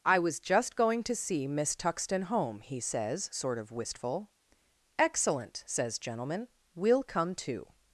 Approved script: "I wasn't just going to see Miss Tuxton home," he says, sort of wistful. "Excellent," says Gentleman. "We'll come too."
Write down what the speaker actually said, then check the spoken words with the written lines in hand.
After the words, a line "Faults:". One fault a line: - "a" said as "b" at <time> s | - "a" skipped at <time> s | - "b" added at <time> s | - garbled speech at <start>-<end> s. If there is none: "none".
"I was just going to see Miss Tuxton home," he says, sort of wistful. "Excellent," says Gentleman. "We'll come too."
Faults:
- "wasn't" said as "was" at 0.2 s